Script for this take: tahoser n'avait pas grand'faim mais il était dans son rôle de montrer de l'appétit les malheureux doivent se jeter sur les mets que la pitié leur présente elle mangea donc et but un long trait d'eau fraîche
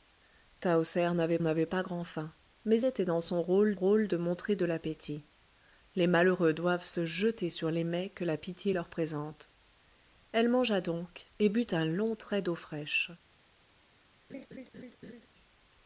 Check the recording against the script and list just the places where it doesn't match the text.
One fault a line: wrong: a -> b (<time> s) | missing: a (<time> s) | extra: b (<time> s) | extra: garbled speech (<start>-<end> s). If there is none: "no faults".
extra: n'avait (1.4 s)
missing: il (2.8 s)
extra: rôle (3.7 s)